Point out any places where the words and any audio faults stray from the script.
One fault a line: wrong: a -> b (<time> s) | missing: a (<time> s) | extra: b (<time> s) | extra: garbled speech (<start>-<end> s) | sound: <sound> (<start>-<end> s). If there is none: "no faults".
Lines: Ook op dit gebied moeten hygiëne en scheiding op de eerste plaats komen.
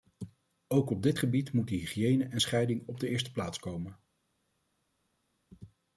no faults